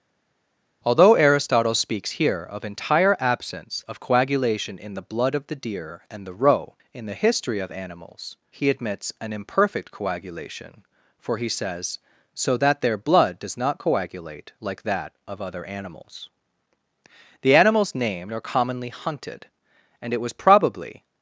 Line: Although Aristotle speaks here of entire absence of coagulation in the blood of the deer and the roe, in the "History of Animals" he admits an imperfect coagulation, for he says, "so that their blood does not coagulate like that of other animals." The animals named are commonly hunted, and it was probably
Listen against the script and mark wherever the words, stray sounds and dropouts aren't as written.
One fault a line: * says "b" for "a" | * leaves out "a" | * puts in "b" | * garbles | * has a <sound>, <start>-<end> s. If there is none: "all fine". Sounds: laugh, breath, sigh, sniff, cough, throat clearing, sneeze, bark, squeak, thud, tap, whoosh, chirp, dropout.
all fine